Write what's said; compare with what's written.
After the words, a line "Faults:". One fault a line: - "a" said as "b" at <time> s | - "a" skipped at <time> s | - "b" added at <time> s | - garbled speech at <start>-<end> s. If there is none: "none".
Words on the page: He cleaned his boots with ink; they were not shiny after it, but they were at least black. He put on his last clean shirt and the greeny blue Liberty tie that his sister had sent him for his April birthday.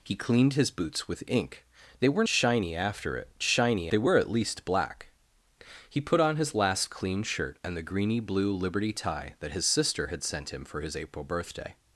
He cleaned his boots with ink; they were shiny after it, shiny they were at least black. He put on his last clean shirt and the greeny blue Liberty tie that his sister had sent him for his April birthday.
Faults:
- "not" skipped at 2.2 s
- "but" said as "shiny" at 3.4 s